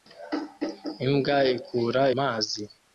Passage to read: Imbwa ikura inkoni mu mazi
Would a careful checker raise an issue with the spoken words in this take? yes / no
yes